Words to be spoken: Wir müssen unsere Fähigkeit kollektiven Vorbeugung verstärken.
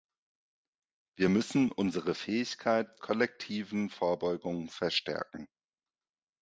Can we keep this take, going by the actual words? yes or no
yes